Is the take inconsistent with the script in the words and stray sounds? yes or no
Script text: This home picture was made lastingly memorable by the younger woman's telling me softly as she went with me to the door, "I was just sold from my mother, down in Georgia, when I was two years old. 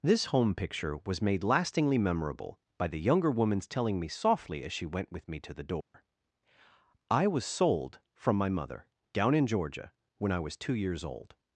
yes